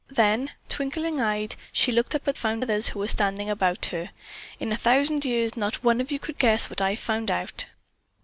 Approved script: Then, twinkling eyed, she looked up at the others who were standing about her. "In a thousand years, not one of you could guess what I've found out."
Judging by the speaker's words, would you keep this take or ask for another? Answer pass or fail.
fail